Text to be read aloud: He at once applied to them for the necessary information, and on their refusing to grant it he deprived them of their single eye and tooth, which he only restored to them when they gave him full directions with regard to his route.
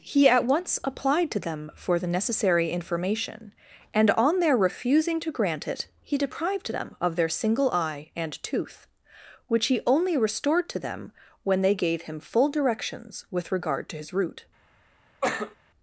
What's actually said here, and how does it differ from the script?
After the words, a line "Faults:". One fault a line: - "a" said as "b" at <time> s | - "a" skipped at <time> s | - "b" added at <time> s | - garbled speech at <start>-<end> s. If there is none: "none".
He at once applied to them for the necessary information, and on their refusing to grant it he deprived them of their single eye and tooth, which he only restored to them when they gave him full directions with regard to his route.
Faults:
none